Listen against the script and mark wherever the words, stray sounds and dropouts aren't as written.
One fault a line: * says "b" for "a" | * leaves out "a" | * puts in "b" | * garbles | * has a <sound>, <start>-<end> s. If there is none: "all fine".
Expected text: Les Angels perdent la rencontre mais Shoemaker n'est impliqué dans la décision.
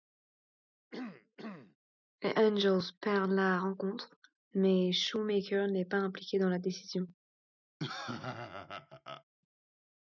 * has a throat clearing, 0.9-1.8 s
* puts in "pas"
* has a laugh, 7.8-9.2 s